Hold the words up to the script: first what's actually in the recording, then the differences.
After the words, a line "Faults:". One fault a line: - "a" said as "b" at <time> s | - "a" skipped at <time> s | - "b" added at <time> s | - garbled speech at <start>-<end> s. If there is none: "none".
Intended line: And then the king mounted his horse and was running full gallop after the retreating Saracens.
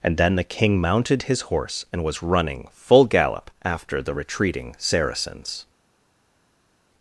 And then the king mounted his horse and was running full gallop after the retreating Saracens.
Faults:
none